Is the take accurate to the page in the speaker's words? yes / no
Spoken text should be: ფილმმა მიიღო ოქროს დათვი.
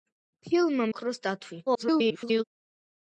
no